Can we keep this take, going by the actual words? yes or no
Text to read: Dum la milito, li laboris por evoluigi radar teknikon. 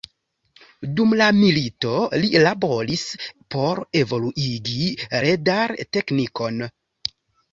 yes